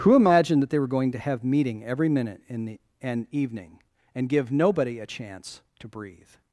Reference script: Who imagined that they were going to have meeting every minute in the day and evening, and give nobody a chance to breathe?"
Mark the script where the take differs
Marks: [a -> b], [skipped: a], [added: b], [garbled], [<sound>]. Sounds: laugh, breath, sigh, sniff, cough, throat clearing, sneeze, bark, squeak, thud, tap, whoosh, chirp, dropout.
Who imagined that they were going to have meeting every minute in the [skipped: day] and evening, and give nobody a chance to breathe?"